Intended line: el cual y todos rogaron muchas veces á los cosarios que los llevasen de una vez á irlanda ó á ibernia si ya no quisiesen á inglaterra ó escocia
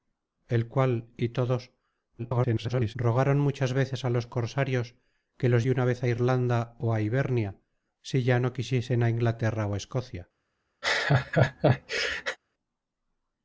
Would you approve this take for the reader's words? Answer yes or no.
no